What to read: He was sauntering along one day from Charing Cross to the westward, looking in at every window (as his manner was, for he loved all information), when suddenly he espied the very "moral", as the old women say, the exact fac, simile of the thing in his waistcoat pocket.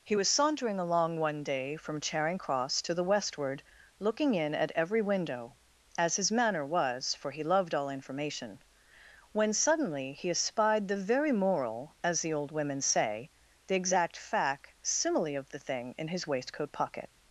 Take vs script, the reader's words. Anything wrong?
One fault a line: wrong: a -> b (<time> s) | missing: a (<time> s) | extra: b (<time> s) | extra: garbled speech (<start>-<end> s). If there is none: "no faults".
no faults